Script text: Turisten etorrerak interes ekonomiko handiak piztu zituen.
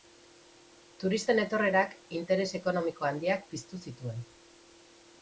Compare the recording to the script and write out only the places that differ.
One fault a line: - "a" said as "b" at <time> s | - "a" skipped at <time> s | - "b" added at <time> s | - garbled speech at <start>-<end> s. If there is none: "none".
none